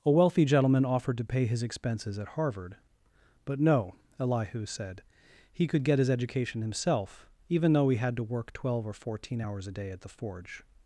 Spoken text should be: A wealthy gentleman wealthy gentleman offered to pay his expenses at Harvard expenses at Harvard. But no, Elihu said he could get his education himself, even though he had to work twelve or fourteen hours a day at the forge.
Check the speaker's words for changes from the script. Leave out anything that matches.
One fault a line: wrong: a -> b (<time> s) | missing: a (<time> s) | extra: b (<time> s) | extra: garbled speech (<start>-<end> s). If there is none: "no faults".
missing: wealthy gentleman (0.8 s)
missing: expenses at Harvard (2.8 s)